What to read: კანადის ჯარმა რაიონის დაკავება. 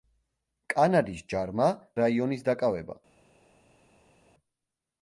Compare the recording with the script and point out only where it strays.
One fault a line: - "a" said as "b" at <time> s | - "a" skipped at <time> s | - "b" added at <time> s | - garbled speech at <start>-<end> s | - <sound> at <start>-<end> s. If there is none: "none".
none